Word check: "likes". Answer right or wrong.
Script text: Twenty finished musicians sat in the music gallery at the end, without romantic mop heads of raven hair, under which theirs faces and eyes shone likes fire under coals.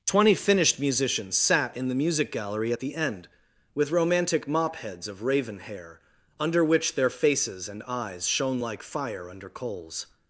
wrong